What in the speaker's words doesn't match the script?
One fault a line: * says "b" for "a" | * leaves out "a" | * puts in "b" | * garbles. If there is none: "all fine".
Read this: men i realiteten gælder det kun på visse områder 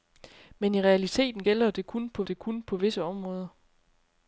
* puts in "det kun på"